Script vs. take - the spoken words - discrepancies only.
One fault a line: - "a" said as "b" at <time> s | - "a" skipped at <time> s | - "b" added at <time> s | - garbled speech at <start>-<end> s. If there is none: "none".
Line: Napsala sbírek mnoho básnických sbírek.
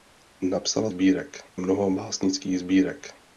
none